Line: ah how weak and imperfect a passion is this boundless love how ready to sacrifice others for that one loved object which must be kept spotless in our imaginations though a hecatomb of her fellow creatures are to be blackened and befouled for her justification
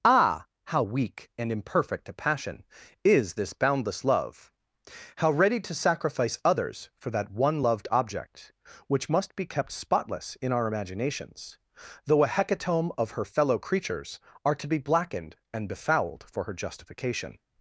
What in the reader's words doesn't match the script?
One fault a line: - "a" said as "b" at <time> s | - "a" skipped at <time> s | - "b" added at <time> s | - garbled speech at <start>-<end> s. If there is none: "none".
none